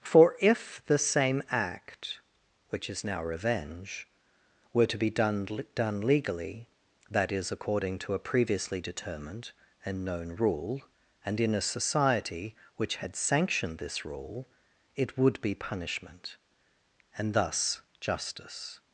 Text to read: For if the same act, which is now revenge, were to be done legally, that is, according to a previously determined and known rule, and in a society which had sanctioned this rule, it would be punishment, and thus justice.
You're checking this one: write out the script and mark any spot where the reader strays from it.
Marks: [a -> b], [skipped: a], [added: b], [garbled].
For if the same act, which is now revenge, were to be done [added: done] legally, that is, according to a previously determined and known rule, and in a society which had sanctioned this rule, it would be punishment, and thus justice.